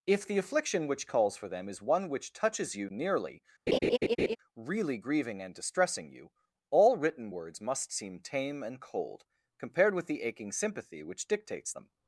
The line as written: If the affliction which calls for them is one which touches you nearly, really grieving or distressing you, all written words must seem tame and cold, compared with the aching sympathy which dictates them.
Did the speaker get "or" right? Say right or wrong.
wrong